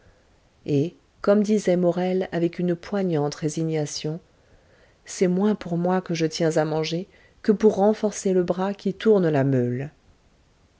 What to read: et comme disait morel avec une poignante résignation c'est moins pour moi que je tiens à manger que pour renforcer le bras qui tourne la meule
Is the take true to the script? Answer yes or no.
yes